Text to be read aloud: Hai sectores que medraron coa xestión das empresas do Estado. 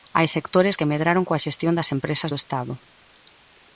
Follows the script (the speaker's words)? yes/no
yes